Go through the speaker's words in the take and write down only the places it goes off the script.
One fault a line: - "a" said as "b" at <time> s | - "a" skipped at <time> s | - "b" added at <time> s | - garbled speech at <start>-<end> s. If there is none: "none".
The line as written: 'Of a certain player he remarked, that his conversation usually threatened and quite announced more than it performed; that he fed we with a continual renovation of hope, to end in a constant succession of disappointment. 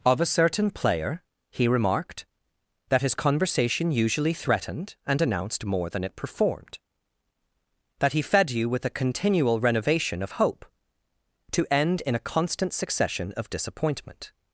- "quite" skipped at 5.2 s
- "we" said as "you" at 8.5 s